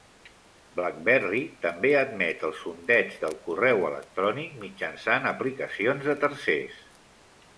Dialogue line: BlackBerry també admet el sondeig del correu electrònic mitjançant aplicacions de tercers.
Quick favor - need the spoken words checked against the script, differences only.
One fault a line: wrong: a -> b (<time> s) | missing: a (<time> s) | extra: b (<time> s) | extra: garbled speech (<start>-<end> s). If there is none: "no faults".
no faults